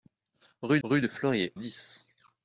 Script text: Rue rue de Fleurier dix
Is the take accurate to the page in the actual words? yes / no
yes